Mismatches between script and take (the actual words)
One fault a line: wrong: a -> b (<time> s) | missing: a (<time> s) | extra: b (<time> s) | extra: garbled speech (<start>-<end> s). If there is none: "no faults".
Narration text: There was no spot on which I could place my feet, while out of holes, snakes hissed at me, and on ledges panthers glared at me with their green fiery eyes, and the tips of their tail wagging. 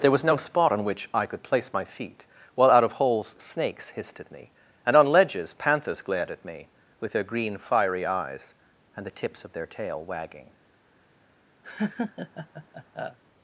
no faults